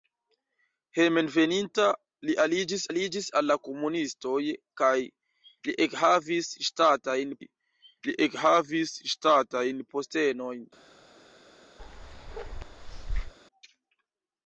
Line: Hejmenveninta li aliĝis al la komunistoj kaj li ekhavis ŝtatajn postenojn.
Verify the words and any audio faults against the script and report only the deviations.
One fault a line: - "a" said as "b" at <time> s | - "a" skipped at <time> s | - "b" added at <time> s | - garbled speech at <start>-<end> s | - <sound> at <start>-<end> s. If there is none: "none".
- "aliĝis" added at 2.9 s
- "li ekhavis ŝtatajn" added at 7.4 s
- bark at 11.8-13.3 s